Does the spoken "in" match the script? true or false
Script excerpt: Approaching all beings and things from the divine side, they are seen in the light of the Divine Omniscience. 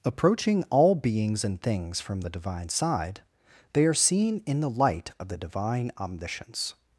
true